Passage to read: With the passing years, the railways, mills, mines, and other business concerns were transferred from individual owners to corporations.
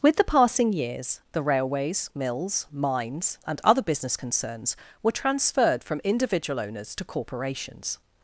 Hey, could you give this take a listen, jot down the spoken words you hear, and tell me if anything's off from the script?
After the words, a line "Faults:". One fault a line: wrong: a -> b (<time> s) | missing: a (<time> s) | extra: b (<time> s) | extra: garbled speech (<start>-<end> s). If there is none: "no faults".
With the passing years, the railways, mills, mines, and other business concerns were transferred from individual owners to corporations.
Faults:
no faults